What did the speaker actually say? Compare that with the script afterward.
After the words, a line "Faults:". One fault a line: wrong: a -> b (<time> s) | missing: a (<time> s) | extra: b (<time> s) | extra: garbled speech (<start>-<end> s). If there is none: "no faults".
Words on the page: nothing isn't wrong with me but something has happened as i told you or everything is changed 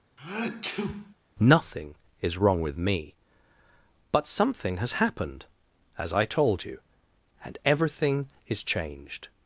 nothing is wrong with me but something has happened as i told you and everything is changed
Faults:
wrong: isn't -> is (2.2 s)
wrong: or -> and (7.4 s)